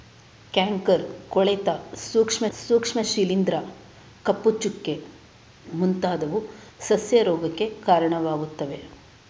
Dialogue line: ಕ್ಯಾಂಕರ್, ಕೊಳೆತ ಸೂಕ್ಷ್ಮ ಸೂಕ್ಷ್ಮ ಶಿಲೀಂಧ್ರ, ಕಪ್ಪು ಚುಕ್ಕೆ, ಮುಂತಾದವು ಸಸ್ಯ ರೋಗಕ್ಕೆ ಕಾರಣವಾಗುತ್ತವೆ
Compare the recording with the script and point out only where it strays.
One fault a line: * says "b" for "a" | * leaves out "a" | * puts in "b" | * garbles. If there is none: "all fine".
all fine